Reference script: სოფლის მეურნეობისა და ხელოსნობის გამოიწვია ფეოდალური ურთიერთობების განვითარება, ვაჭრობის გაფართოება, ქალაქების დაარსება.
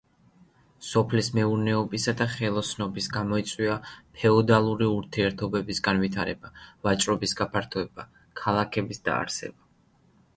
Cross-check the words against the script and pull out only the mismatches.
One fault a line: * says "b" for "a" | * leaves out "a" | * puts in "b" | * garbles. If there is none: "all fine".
all fine